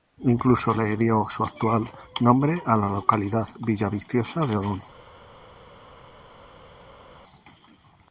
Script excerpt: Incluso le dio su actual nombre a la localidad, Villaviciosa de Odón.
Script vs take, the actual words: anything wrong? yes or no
no